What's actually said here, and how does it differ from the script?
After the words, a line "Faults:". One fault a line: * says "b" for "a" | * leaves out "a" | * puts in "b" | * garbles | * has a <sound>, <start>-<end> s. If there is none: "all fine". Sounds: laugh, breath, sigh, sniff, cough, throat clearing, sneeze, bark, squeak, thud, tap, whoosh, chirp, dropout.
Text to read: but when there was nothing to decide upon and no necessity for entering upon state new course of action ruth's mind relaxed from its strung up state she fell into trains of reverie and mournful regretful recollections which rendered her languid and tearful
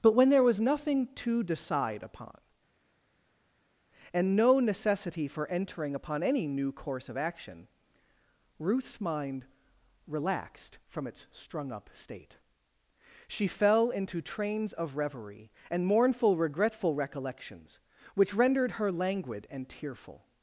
but when there was nothing to decide upon and no necessity for entering upon any new course of action ruth's mind relaxed from its strung up state she fell into trains of reverie and mournful regretful recollections which rendered her languid and tearful
Faults:
* says "any" for "state"